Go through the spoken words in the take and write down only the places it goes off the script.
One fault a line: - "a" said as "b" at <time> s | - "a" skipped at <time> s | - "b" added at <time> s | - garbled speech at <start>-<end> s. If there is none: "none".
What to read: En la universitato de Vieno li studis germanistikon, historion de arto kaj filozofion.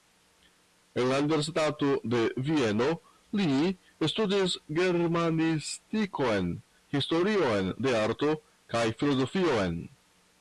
none